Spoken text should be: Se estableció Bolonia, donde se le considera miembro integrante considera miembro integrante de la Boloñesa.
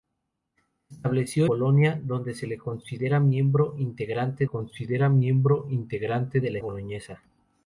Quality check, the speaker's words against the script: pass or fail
pass